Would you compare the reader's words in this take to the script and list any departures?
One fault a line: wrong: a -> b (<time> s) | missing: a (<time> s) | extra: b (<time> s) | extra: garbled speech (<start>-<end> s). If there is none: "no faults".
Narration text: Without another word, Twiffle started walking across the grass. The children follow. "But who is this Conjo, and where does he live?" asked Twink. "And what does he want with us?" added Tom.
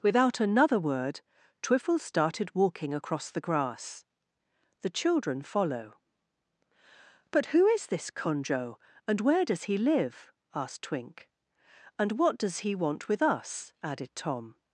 no faults